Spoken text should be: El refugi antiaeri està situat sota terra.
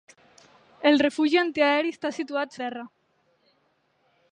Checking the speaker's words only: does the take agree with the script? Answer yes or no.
no